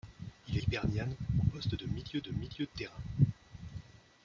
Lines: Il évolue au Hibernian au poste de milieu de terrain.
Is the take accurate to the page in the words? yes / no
no